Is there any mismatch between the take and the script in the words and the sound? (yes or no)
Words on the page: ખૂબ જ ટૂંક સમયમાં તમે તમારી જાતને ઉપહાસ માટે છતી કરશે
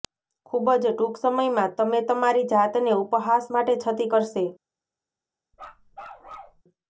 yes